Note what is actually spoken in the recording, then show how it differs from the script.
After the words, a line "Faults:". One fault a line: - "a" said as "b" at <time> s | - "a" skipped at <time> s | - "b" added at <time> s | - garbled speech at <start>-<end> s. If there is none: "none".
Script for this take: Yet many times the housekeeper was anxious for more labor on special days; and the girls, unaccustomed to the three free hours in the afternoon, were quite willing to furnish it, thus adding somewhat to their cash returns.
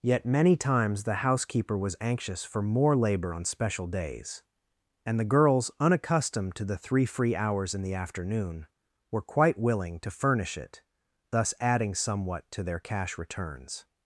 Yet many times the housekeeper was anxious for more labor on special days; and the girls, unaccustomed to the three free hours in the afternoon, were quite willing to furnish it, thus adding somewhat to their cash returns.
Faults:
none